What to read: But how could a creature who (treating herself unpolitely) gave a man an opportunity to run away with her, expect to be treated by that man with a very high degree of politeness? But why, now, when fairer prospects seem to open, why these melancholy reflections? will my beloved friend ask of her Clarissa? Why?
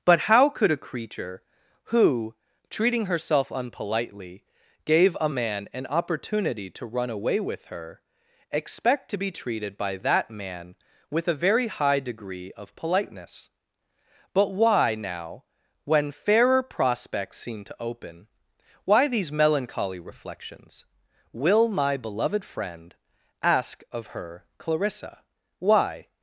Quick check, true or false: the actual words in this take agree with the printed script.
true